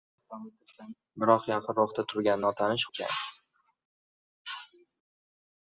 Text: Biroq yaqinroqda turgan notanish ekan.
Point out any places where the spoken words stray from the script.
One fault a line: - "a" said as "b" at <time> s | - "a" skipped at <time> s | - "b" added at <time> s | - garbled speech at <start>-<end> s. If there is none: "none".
none